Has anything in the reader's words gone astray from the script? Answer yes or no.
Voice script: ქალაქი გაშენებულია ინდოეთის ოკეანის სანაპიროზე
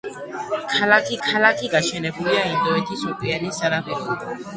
yes